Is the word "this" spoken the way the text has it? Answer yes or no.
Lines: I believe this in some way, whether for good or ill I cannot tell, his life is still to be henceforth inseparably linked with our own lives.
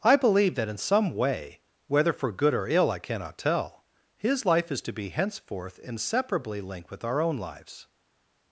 no